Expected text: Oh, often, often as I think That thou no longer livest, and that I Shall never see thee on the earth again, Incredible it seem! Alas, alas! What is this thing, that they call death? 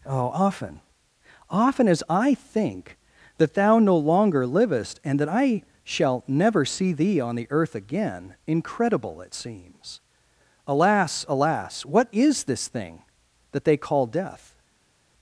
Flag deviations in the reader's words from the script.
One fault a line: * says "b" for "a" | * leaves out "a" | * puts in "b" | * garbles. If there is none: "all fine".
* says "seems" for "seem"